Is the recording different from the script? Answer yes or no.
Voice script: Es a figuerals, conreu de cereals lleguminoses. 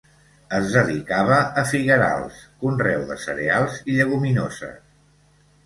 yes